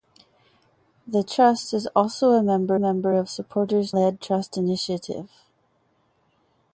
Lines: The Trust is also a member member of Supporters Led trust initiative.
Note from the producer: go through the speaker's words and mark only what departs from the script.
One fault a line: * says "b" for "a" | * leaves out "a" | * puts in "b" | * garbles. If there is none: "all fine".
all fine